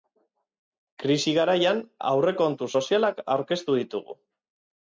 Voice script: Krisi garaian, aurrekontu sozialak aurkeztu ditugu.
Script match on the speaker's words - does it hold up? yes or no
yes